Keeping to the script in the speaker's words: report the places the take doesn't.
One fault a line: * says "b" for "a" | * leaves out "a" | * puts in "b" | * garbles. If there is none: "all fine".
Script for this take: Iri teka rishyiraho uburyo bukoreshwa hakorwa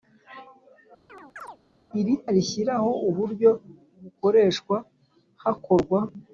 * leaves out "teka"